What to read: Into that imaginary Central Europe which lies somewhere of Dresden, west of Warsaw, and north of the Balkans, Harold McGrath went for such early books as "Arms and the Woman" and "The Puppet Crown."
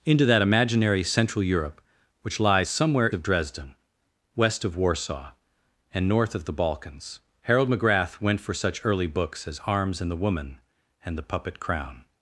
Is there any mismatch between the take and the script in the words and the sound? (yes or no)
no